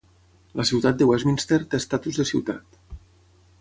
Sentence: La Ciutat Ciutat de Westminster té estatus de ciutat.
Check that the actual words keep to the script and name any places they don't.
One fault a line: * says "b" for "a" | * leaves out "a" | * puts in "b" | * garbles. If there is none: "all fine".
* leaves out "Ciutat"